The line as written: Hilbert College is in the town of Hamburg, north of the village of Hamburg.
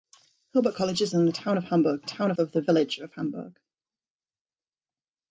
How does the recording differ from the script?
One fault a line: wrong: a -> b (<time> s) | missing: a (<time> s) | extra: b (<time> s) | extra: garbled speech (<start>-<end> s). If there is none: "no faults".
wrong: north -> town (2.0 s)